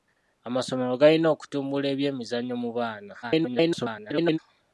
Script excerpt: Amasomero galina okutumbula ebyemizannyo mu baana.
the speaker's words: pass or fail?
fail